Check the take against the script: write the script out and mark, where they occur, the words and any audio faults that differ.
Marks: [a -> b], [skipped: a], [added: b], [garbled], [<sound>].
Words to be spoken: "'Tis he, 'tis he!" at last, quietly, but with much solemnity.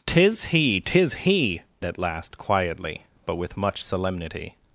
"'Tis he, 'tis he!" at last, quietly, but with much solemnity.